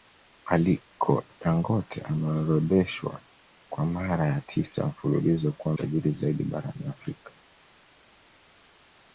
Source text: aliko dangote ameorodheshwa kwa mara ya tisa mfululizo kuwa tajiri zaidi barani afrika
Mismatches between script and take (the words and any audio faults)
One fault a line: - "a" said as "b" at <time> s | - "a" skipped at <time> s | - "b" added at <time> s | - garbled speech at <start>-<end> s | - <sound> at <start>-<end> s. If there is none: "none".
none